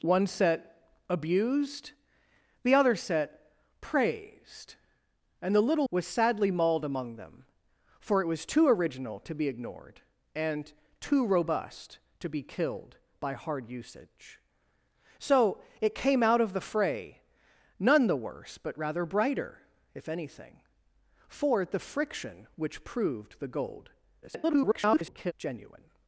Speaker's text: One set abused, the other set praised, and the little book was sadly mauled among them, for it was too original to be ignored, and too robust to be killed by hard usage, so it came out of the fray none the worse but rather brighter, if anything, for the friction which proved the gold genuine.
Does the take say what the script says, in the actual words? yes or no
no